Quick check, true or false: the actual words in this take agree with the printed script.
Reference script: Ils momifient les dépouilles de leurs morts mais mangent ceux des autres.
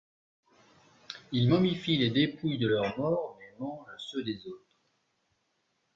true